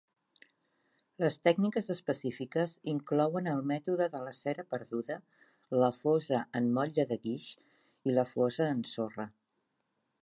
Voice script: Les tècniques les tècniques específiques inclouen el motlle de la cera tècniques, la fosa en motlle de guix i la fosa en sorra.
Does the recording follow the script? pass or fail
fail